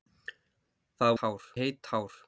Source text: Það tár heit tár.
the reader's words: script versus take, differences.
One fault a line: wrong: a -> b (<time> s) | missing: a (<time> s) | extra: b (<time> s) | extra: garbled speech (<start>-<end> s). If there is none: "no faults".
no faults